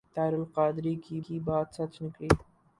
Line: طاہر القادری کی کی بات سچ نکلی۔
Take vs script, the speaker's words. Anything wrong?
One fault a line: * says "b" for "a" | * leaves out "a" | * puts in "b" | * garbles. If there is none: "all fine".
all fine